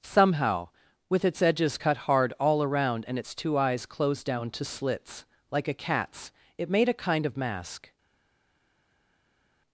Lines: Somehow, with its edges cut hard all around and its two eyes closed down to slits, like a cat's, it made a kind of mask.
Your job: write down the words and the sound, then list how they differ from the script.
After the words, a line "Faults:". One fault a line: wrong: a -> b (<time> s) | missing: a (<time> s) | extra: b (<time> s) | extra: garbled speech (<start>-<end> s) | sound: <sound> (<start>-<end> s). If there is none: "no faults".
Somehow, with its edges cut hard all around and its two eyes closed down to slits, like a cat's, it made a kind of mask.
Faults:
no faults